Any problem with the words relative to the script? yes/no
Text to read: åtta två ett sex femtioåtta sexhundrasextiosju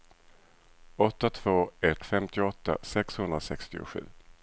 yes